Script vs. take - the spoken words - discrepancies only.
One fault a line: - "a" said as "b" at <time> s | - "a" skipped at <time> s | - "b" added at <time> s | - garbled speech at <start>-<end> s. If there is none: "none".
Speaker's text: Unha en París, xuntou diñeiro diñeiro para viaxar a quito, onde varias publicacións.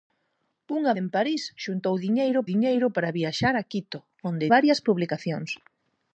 none